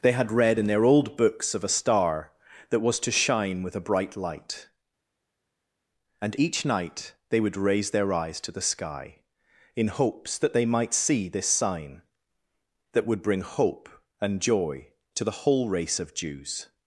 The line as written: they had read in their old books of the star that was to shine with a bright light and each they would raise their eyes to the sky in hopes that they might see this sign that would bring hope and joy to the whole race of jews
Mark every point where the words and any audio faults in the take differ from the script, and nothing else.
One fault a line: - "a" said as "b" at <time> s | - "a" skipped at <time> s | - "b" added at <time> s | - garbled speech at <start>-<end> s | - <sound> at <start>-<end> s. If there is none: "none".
- "the" said as "a" at 1.6 s
- "night" added at 6.7 s